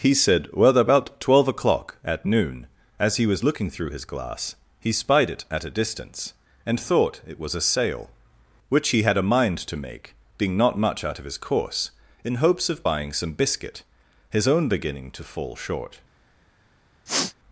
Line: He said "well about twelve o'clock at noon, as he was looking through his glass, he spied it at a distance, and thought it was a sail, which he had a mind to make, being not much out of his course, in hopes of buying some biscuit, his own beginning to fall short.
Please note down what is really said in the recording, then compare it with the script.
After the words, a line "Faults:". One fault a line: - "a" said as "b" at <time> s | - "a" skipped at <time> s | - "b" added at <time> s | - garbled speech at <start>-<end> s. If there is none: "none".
He said "well about twelve o'clock at noon, as he was looking through his glass, he spied it at a distance, and thought it was a sail, which he had a mind to make, being not much out of his course, in hopes of buying some biscuit, his own beginning to fall short.
Faults:
none